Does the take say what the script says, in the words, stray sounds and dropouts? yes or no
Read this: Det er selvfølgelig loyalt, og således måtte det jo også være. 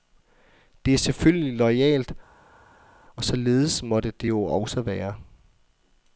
yes